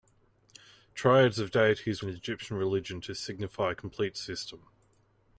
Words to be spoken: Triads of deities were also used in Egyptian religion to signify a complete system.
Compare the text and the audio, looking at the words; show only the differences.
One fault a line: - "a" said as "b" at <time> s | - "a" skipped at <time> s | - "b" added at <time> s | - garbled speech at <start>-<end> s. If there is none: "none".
- "were also used" skipped at 2.0 s